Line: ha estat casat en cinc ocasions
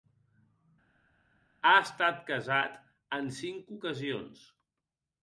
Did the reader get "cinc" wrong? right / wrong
right